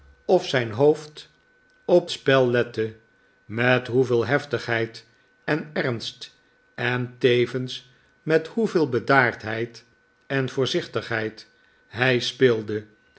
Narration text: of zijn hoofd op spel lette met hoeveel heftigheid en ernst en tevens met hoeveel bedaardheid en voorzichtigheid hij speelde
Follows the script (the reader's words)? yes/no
yes